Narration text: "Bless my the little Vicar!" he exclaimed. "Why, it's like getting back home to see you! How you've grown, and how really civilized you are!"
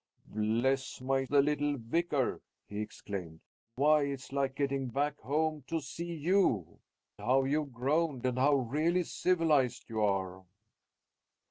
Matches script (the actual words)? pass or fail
pass